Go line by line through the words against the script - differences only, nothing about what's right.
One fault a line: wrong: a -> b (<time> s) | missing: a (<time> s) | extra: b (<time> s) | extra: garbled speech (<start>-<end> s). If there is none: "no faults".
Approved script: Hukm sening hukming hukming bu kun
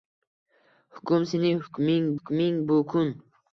no faults